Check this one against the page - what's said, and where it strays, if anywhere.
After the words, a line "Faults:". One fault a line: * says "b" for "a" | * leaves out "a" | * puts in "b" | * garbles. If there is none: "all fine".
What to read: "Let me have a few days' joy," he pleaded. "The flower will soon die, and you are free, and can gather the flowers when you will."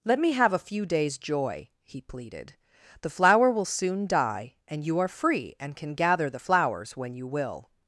"Let me have a few days' joy," he pleaded. "The flower will soon die, and you are free, and can gather the flowers when you will."
Faults:
all fine